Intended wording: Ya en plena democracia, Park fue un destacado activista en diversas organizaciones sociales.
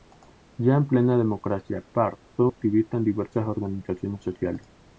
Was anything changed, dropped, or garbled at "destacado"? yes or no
yes